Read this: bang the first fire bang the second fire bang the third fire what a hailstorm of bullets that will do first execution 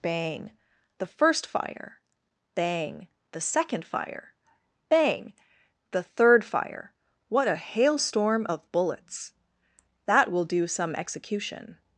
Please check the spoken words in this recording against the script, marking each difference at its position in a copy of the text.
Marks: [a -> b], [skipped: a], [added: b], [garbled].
bang the first fire bang the second fire bang the third fire what a hailstorm of bullets that will do [first -> some] execution